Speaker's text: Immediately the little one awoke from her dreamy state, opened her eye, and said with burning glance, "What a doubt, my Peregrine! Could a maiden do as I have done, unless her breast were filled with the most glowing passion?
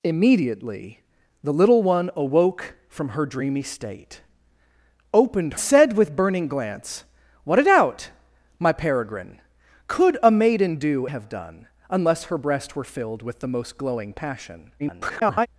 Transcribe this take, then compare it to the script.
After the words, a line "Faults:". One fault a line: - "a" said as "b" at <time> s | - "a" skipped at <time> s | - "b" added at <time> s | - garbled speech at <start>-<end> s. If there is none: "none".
Immediately the little one awoke from her dreamy state, opened said with burning glance, "What a doubt, my Peregrine! Could a maiden do have done, unless her breast were filled with the most glowing passion? [garbled]
Faults:
- "her eye and" skipped at 5.5 s
- "as I" skipped at 11.0 s
- garbled speech at 14.8-15.5 s